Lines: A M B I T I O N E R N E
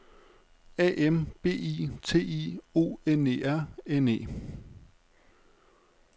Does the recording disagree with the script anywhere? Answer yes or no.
no